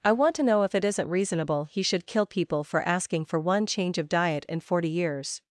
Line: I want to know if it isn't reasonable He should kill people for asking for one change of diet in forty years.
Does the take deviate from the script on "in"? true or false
false